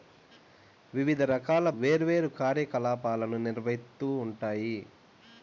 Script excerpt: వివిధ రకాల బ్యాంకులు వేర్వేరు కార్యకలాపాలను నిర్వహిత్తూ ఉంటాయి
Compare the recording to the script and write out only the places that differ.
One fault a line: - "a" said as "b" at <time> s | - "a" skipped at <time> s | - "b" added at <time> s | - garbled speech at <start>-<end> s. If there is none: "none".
- "బ్యాంకులు" skipped at 1.7 s